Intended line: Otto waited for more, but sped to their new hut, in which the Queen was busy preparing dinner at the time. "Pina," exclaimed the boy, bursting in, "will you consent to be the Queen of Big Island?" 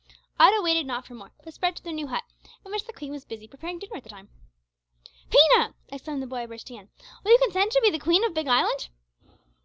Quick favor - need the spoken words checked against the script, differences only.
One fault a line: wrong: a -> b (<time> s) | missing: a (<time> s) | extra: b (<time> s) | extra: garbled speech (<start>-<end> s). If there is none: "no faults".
extra: not (0.9 s)